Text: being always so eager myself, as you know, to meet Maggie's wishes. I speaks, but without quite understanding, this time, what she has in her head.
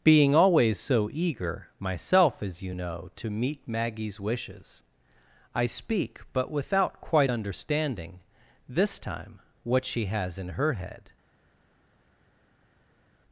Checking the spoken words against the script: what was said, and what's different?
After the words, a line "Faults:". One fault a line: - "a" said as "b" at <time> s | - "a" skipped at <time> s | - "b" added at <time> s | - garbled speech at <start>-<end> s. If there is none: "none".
being always so eager myself, as you know, to meet Maggie's wishes. I speak, but without quite understanding, this time, what she has in her head.
Faults:
- "speaks" said as "speak" at 5.7 s